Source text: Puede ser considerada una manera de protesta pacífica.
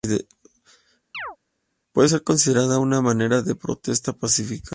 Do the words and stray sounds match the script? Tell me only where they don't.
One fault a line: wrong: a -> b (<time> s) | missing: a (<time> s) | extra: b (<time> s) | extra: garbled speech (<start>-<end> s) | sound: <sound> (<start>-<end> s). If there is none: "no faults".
sound: chirp (1.1-1.4 s)